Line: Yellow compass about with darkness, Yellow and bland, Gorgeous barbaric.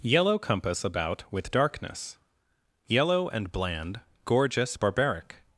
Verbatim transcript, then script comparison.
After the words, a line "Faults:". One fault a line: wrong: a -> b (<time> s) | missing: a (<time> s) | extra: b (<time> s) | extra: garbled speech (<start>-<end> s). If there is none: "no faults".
Yellow compass about with darkness, Yellow and bland, Gorgeous barbaric.
Faults:
no faults